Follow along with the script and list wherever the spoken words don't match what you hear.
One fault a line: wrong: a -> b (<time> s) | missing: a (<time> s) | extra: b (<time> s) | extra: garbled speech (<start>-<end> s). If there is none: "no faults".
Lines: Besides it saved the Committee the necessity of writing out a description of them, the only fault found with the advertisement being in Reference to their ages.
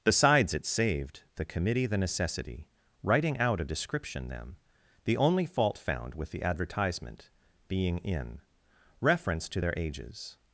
missing: of (2.7 s)
missing: of (4.3 s)